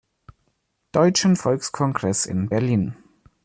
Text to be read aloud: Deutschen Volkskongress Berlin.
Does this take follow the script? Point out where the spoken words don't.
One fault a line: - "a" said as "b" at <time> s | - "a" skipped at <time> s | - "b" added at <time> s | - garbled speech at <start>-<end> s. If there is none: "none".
- "in" added at 2.2 s